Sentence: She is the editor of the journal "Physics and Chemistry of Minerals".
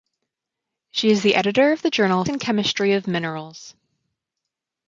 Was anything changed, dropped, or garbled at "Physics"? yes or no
yes